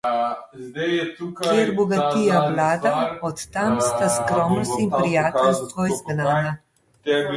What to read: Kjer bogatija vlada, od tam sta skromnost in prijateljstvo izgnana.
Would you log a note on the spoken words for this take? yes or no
no